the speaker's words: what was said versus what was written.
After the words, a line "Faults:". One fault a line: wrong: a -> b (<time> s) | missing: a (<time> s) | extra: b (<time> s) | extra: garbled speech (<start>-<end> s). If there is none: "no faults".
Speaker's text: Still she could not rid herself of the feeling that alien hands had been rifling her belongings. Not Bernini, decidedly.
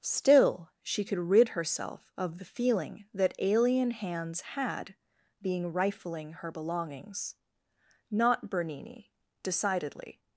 Still she could rid herself of the feeling that alien hands had being rifling her belongings. Not Bernini, decidedly.
Faults:
missing: not (1.2 s)
wrong: been -> being (5.4 s)